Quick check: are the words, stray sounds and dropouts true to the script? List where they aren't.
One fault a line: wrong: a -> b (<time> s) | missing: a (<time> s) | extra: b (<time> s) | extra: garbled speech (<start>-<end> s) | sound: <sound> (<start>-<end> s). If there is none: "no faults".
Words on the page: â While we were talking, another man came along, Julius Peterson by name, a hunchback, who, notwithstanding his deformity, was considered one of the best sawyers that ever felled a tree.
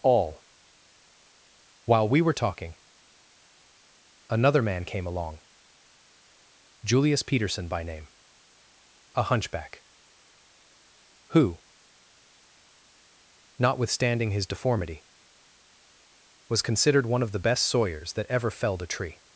wrong: â -> all (0.0 s)